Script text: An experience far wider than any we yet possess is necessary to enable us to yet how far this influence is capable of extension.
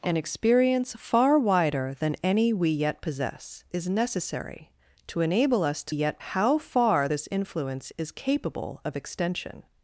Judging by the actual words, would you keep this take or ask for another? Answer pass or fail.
pass